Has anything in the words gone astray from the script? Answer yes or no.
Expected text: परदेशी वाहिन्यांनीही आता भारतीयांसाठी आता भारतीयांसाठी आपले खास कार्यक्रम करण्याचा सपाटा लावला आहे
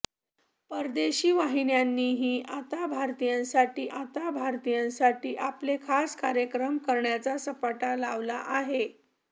no